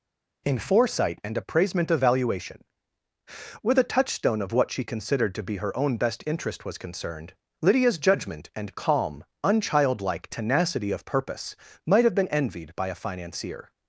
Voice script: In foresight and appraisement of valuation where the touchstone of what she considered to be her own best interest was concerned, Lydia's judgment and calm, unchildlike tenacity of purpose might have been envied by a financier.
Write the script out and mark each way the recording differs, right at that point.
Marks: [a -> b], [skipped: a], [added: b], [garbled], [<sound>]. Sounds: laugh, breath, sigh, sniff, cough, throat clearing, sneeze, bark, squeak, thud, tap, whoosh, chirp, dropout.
In foresight and appraisement of valuation [where the -> with a] touchstone of what she considered to be her own best interest was concerned, Lydia's judgment and calm, unchildlike tenacity of purpose might have been envied by a financier.